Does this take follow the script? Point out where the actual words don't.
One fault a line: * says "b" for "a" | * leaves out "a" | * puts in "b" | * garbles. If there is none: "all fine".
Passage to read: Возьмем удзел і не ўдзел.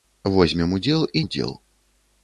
* leaves out "не"